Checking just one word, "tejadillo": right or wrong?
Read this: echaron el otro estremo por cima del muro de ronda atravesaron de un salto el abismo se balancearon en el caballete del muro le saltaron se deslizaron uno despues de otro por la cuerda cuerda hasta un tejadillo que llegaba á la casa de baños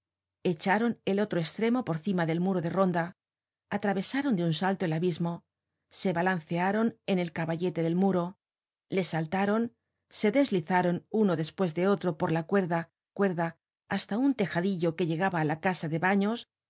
right